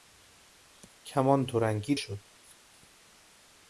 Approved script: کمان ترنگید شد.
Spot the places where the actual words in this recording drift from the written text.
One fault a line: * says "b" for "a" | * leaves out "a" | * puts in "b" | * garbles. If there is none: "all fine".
all fine